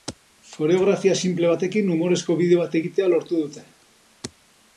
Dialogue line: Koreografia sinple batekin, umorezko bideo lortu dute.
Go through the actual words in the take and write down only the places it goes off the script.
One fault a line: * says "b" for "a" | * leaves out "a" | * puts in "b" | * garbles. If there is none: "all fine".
* puts in "bat egitea"